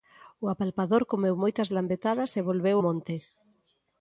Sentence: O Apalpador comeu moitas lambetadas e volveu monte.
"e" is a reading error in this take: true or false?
false